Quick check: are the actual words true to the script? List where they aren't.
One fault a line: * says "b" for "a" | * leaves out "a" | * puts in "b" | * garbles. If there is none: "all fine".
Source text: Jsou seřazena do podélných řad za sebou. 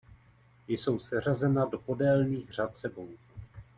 * leaves out "za"